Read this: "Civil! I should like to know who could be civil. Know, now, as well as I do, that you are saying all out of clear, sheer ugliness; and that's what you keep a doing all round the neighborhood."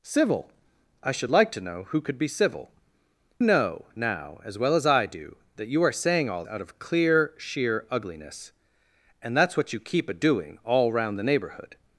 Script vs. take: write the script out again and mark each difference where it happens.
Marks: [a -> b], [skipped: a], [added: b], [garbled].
"Civil! I should like to know who could be civil. Know, now, as well as I do, that you are saying all out of clear, sheer ugliness; and that's what you keep a doing all round the neighborhood."